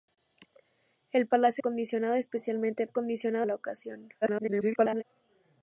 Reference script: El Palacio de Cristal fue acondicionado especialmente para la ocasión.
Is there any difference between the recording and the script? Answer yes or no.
yes